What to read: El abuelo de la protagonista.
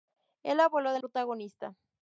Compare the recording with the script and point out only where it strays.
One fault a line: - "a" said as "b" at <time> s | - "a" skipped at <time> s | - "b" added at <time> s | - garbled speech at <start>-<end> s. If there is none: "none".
- "la" skipped at 1.0 s